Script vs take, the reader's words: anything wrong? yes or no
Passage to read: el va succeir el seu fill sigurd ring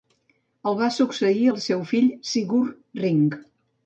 no